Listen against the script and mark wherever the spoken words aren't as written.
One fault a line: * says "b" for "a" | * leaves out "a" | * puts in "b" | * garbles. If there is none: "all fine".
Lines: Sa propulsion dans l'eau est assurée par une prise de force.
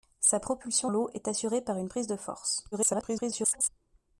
* leaves out "dans"
* garbles